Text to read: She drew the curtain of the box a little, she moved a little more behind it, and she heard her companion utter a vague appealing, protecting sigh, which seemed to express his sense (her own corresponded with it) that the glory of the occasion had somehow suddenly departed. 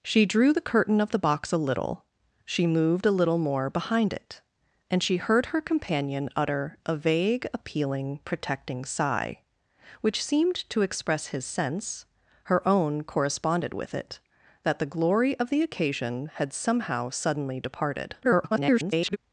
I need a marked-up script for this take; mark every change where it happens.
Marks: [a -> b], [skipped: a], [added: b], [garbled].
She drew the curtain of the box a little, she moved a little more behind it, and she heard her companion utter a vague appealing, protecting sigh, which seemed to express his sense (her own corresponded with it) that the glory of the occasion had somehow suddenly departed. [garbled]